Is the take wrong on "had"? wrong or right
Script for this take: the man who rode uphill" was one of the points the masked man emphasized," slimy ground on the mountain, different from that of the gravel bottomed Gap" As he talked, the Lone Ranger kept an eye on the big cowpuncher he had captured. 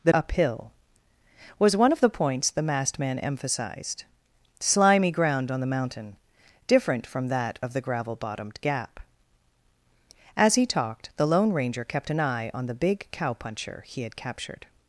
right